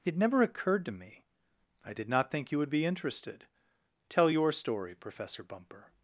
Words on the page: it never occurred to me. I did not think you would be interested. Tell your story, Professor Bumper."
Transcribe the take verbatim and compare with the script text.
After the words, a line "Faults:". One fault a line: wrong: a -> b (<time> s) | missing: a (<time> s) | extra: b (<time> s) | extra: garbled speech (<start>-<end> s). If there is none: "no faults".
it never occurred to me. I did not think you would be interested. Tell your story, Professor Bumper."
Faults:
no faults